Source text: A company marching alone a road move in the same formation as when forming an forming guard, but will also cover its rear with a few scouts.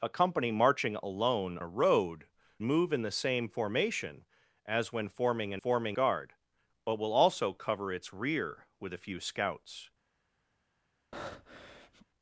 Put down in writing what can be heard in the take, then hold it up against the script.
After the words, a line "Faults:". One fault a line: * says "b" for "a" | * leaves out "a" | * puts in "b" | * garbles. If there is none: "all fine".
A company marching alone a road move in the same formation as when forming an forming guard, but will also cover its rear with a few scouts.
Faults:
all fine